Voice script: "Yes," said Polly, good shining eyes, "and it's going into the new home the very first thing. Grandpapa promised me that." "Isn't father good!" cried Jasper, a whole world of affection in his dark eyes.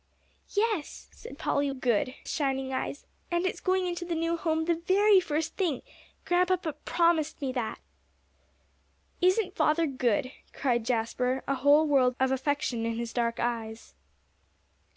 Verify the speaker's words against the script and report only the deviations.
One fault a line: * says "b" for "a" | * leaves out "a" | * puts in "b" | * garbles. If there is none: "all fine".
all fine